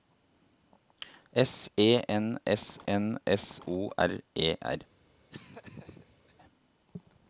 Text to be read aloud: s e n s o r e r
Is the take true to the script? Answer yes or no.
no